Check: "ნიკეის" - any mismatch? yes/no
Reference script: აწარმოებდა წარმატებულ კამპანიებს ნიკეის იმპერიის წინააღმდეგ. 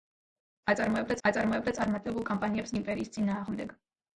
yes